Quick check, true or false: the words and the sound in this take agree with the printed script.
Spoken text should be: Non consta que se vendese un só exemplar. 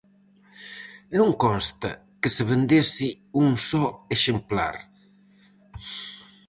true